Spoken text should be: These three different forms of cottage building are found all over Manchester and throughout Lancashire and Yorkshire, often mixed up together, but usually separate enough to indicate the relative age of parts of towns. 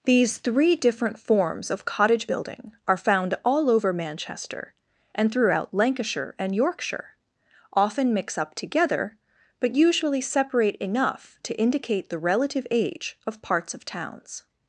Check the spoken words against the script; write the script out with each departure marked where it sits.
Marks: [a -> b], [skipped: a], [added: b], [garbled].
These three different forms of cottage building are found all over Manchester and throughout Lancashire and Yorkshire, often [mixed -> mix] up together, but usually separate enough to indicate the relative age of parts of towns.